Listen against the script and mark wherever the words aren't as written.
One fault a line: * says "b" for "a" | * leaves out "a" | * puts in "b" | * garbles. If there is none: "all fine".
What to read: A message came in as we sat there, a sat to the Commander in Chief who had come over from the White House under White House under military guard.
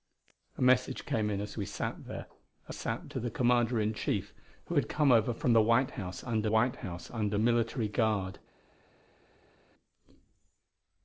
all fine